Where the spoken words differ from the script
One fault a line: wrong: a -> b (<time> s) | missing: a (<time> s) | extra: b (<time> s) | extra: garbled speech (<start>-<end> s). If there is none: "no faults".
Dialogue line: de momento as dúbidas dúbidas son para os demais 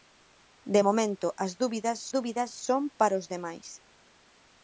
no faults